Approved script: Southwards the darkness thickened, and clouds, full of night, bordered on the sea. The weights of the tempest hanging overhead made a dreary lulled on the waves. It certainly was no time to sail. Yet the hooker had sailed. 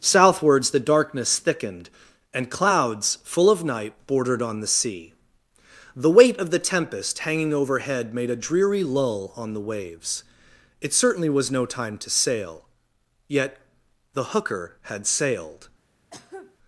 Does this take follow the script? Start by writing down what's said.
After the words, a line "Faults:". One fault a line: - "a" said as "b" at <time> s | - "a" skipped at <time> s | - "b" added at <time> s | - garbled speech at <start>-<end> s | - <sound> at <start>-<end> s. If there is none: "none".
Southwards the darkness thickened, and clouds, full of night, bordered on the sea. The weight of the tempest hanging overhead made a dreary lull on the waves. It certainly was no time to sail. Yet the hooker had sailed.
Faults:
- "weights" said as "weight" at 6.1 s
- "lulled" said as "lull" at 8.8 s
- cough at 16.1-16.6 s